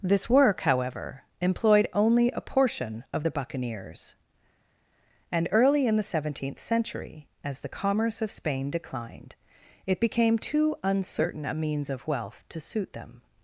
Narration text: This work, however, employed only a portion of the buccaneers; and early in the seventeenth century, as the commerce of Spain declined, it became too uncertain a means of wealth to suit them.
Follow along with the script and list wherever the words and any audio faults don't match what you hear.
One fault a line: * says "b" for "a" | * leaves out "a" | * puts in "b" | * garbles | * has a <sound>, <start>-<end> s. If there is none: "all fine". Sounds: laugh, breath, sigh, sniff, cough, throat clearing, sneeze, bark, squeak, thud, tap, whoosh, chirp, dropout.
all fine